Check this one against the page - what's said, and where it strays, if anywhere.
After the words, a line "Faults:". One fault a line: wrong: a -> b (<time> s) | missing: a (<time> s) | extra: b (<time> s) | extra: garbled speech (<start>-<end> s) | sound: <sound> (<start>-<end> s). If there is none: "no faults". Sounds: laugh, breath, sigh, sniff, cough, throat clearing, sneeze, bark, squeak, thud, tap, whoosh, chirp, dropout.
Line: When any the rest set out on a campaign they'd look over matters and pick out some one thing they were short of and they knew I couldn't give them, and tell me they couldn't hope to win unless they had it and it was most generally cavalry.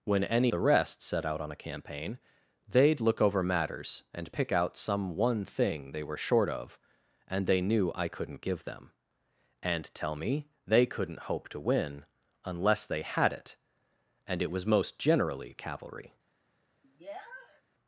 When any the rest set out on a campaign they'd look over matters and pick out some one thing they were short of and they knew I couldn't give them, and tell me they couldn't hope to win unless they had it and it was most generally cavalry.
Faults:
sound: sniff (16.8-17.6 s)